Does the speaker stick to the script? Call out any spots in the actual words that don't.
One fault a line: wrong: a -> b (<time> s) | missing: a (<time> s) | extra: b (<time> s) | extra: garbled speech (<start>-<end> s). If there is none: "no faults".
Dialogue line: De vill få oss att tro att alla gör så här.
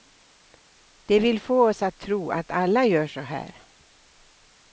no faults